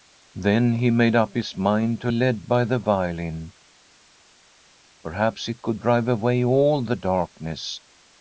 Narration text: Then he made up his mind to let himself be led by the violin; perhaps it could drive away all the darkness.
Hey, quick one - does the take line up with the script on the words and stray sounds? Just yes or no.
no